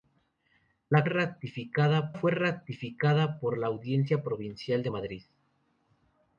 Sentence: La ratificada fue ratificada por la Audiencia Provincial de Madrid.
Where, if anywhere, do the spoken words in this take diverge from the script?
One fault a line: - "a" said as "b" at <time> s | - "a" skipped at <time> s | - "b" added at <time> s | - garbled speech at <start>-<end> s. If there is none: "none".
none